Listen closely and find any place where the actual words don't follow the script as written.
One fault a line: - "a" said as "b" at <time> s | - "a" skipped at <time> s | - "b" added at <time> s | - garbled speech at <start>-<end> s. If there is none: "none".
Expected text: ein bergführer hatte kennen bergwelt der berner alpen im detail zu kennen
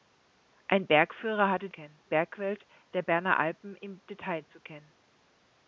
none